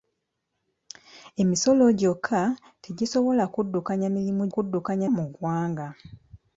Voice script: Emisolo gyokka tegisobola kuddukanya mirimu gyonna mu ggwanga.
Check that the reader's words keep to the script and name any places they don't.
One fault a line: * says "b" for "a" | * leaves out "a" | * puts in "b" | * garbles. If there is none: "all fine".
* says "kuddukanya" for "gyonna"